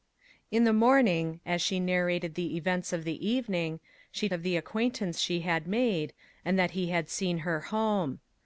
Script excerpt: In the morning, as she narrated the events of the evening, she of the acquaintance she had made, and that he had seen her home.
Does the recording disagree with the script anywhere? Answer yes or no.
no